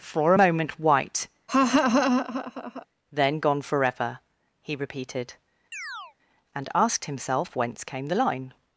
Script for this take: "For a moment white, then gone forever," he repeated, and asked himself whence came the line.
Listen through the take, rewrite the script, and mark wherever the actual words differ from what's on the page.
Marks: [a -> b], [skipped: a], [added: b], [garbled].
"For a moment white, then gone forever," he repeated, and asked himself whence came the line.